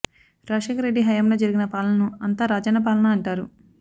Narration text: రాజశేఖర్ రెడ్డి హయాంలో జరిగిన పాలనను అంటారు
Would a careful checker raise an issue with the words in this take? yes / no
yes